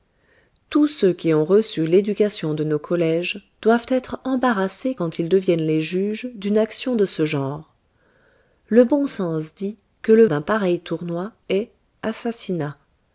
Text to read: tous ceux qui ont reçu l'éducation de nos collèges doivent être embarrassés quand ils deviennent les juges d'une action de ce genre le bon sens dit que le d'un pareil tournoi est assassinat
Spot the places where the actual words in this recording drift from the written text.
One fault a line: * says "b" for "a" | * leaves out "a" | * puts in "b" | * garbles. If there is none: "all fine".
all fine